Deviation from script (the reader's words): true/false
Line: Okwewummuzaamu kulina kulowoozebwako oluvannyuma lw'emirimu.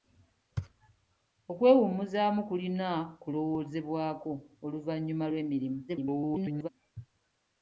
true